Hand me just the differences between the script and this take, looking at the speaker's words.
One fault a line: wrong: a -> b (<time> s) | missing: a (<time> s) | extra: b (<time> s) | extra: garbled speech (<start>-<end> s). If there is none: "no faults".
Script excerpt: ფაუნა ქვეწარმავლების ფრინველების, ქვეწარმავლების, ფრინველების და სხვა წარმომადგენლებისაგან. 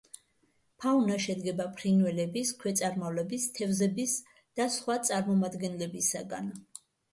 wrong: ქვეწარმავლების -> შედგება (1.2 s)
wrong: ფრინველების -> თევზების (3.6 s)